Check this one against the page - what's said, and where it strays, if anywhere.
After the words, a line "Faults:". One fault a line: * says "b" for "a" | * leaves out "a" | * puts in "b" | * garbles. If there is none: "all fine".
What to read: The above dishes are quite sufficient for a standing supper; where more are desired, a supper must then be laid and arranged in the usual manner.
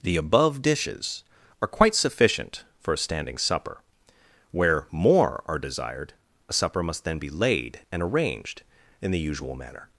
The above dishes are quite sufficient for a standing supper; where more are desired, a supper must then be laid and arranged in the usual manner.
Faults:
all fine